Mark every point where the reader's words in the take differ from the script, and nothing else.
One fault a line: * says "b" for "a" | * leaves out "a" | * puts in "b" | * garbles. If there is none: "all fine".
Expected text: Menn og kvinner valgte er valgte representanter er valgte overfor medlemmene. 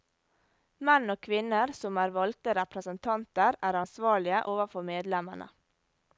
* says "som" for "valgte"
* says "ansvarlige" for "valgte"